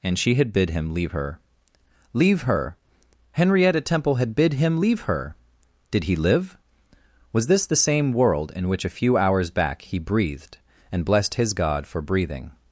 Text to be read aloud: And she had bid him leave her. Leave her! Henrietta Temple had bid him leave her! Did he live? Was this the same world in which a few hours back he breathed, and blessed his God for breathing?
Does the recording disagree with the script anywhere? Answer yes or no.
no